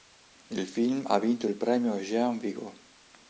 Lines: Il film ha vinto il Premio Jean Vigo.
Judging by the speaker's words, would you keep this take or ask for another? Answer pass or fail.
pass